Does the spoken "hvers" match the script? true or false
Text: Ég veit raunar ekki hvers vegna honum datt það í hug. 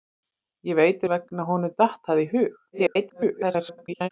false